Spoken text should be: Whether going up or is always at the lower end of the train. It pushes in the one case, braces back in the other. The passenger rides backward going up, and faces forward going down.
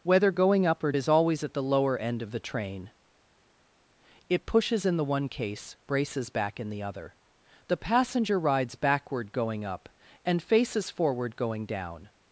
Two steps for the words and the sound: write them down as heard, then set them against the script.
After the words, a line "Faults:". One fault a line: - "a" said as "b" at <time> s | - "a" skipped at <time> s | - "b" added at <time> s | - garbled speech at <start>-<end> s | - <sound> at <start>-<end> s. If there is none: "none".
Whether going up or is always at the lower end of the train. It pushes in the one case, braces back in the other. The passenger rides backward going up, and faces forward going down.
Faults:
none